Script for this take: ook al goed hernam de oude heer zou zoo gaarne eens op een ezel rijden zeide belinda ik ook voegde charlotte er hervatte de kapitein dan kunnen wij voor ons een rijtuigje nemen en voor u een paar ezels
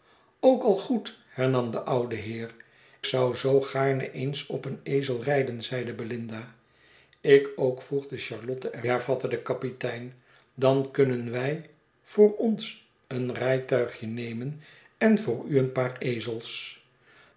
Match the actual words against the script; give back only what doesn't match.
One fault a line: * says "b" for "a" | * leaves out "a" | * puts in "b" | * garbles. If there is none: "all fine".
all fine